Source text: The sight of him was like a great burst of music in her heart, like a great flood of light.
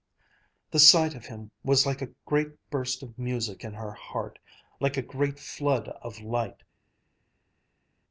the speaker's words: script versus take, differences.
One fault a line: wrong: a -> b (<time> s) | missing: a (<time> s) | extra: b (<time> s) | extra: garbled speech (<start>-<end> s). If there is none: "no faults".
no faults